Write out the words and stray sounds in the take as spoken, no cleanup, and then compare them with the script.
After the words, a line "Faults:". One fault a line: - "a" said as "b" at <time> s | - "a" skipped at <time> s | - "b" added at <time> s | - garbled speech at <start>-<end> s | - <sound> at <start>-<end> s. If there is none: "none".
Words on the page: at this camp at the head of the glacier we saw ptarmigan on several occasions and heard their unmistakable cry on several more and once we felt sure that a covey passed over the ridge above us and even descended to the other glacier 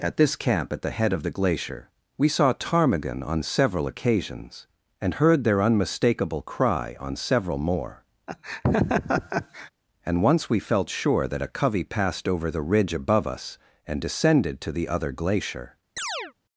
at this camp at the head of the glacier we saw ptarmigan on several occasions and heard their unmistakable cry on several more and once we felt sure that a covey passed over the ridge above us and descended to the other glacier
Faults:
- laugh at 8.3-9.7 s
- "even" skipped at 14.0 s
- chirp at 16.0-16.3 s